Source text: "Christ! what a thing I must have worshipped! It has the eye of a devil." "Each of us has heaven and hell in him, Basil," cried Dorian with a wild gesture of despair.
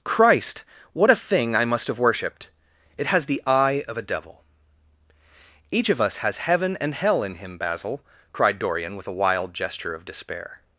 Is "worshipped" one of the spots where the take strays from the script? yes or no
no